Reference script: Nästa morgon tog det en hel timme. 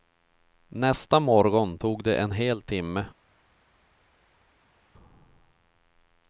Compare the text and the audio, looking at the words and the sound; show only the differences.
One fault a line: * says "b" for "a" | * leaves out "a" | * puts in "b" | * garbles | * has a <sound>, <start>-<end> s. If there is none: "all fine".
all fine